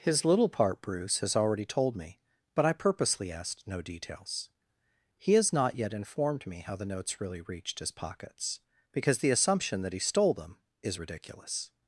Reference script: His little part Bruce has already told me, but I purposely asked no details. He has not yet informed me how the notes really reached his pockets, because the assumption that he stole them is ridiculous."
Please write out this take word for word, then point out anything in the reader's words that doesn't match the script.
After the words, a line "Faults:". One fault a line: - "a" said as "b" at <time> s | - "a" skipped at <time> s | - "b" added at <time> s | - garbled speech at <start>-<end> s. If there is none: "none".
His little part Bruce has already told me, but I purposely asked no details. He has not yet informed me how the notes really reached his pockets, because the assumption that he stole them is ridiculous."
Faults:
none